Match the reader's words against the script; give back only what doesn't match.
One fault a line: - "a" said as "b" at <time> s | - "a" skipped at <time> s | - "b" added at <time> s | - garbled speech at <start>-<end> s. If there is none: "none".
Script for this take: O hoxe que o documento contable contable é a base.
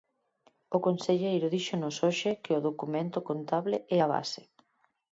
- "conselleiro díxonos" added at 0.9 s
- "contable" skipped at 3.8 s